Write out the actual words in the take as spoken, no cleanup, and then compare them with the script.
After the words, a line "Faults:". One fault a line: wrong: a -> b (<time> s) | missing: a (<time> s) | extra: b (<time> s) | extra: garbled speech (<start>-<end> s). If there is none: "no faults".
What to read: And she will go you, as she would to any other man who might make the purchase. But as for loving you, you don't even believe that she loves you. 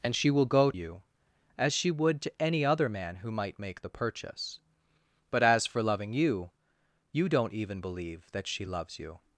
And she will go you, as she would to any other man who might make the purchase. But as for loving you, you don't even believe that she loves you.
Faults:
no faults